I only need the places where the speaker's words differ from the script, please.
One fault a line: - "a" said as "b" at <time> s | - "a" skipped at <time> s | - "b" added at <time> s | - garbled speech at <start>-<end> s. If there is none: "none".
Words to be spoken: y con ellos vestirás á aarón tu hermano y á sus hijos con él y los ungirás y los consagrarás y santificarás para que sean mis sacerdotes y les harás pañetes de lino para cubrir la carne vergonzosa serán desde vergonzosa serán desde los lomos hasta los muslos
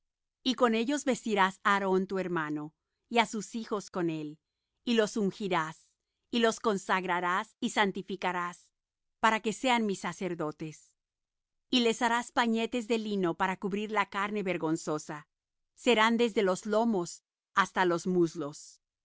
- "vergonzosa serán desde" skipped at 16.4 s